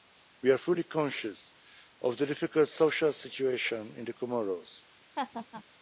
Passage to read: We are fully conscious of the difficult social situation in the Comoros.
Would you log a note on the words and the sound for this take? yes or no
yes